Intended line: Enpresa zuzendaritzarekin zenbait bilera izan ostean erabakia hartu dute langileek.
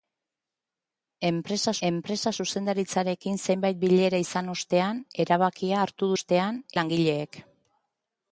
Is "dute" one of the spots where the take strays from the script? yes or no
yes